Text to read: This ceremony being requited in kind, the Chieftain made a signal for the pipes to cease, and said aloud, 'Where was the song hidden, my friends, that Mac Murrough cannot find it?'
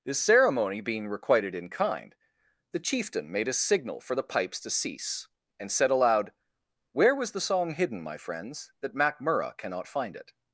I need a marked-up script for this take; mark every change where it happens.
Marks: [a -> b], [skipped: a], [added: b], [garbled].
This ceremony being requited in kind, the Chieftain made a signal for the pipes to cease, and said aloud, 'Where was the song hidden, my friends, that Mac Murrough cannot find it?'